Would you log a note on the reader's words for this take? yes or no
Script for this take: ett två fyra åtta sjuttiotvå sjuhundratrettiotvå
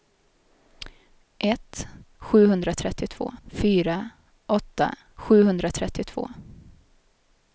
yes